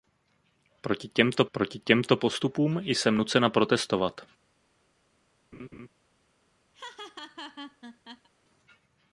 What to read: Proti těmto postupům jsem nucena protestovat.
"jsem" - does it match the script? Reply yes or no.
yes